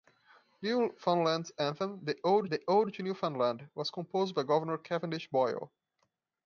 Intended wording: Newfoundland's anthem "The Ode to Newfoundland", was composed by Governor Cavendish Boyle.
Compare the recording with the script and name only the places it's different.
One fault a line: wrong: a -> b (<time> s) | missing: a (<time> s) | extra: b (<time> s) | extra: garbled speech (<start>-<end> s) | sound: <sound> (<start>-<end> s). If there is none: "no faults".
extra: the Ode (2.5 s)